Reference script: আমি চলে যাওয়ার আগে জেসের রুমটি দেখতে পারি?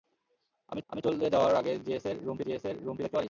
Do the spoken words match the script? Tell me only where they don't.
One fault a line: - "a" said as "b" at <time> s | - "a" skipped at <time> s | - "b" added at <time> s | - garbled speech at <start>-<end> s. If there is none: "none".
- "আমি" added at 0.9 s
- "জেসের রুমটি" added at 2.5 s